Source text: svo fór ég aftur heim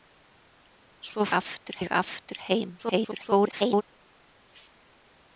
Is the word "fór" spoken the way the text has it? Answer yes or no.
no